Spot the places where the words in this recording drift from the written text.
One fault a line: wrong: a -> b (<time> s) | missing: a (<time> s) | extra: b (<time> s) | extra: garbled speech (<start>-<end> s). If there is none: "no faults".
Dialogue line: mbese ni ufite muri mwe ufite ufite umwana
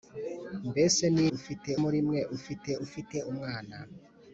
no faults